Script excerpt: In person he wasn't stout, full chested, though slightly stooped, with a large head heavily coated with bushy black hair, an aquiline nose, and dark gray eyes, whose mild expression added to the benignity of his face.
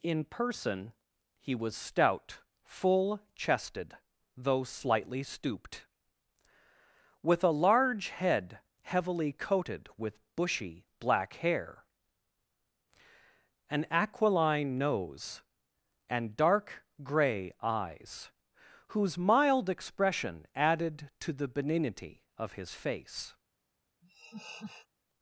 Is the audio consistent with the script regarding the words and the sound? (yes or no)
no